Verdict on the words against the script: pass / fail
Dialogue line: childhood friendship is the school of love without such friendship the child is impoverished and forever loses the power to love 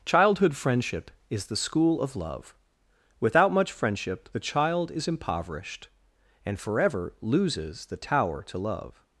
fail